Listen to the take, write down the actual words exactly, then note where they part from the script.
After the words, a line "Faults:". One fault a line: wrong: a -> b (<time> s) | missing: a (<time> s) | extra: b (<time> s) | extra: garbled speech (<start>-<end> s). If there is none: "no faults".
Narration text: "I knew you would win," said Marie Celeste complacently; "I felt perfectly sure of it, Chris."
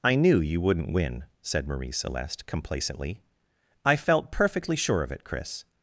"I knew you wouldn't win," said Marie Celeste complacently; "I felt perfectly sure of it, Chris."
Faults:
wrong: would -> wouldn't (0.6 s)